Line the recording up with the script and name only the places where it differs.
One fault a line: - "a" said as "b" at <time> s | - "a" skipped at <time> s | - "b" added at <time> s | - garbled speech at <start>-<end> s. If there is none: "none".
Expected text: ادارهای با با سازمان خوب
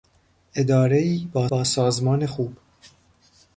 none